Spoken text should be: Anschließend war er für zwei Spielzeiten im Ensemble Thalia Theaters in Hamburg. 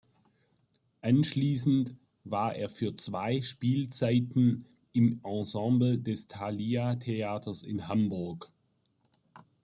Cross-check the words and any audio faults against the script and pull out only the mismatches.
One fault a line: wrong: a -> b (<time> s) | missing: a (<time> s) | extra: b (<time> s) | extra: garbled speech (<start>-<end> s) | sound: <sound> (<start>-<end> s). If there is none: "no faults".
extra: des (6.0 s)